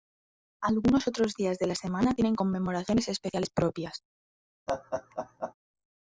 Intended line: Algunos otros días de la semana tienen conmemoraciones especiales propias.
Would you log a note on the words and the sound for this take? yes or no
yes